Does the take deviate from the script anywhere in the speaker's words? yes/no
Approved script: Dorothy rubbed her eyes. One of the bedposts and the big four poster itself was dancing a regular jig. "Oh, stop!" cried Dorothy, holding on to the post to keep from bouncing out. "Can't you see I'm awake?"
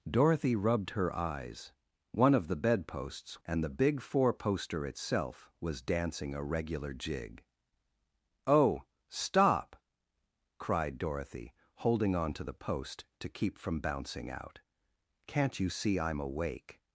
no